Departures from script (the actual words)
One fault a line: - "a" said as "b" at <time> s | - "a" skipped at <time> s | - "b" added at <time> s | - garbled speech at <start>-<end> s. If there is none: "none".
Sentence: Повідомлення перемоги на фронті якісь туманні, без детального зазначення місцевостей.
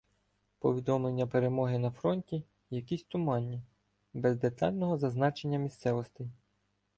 none